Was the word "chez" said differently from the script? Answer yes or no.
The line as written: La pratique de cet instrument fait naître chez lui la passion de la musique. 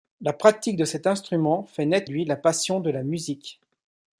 yes